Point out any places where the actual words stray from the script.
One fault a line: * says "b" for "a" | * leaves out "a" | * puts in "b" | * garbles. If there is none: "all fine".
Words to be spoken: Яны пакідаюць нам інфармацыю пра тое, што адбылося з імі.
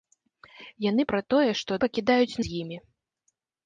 * leaves out "пакідаюць нам інфармацыю"
* says "пакідаюць" for "адбылося"